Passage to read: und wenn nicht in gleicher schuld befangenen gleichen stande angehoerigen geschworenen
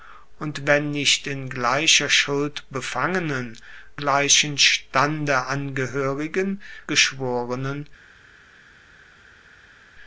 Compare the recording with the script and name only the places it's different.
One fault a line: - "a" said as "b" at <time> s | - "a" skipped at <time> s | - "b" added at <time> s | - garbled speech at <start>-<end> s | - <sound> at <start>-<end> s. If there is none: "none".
none